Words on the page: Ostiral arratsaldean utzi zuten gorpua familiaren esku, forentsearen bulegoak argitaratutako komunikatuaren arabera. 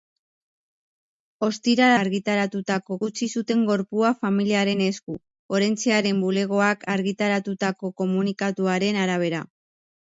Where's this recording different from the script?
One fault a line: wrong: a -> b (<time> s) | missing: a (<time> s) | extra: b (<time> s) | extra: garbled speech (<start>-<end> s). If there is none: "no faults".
wrong: arratsaldean -> argitaratutako (2.0 s)